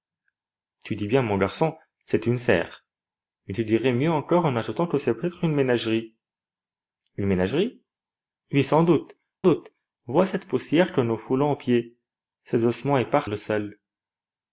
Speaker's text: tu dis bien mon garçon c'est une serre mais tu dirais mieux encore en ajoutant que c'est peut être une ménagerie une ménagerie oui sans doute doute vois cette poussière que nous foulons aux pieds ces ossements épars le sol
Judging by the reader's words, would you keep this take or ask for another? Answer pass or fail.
pass